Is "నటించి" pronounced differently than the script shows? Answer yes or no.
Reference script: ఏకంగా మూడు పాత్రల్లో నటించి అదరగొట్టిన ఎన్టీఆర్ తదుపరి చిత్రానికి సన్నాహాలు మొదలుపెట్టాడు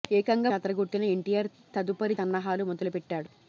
yes